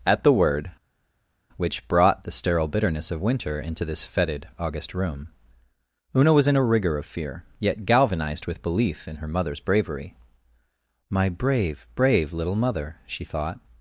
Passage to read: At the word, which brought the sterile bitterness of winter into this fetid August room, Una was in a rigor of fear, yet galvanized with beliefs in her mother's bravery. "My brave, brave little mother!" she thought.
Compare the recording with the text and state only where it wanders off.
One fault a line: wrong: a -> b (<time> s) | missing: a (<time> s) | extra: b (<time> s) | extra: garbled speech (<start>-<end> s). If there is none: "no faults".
wrong: beliefs -> belief (8.6 s)